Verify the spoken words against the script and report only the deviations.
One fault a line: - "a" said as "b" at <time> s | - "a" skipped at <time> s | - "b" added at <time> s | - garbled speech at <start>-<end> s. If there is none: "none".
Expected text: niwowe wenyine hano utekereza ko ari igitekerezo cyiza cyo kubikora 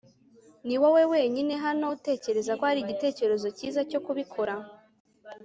none